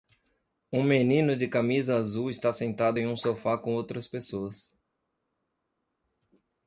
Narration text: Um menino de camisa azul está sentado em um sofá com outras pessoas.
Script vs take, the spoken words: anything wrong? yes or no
no